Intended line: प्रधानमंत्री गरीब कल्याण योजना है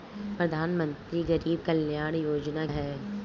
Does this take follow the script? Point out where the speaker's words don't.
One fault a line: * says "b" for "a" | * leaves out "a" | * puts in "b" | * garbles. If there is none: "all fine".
all fine